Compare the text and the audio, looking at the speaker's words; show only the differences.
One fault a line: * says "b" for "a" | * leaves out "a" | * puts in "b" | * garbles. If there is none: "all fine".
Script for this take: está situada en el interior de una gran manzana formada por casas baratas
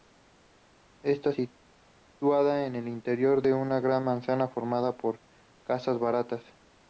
all fine